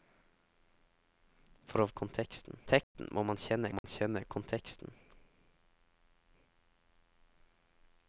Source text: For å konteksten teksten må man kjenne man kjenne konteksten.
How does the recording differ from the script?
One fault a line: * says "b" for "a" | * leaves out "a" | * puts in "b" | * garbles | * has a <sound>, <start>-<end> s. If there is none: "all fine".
* has a dropout, 2.8-2.9 s
* has a dropout, 3.8-3.8 s